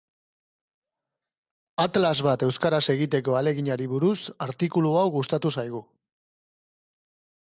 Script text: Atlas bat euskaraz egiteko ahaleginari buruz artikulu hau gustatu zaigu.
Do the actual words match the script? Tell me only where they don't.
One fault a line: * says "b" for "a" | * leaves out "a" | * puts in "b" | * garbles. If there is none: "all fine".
all fine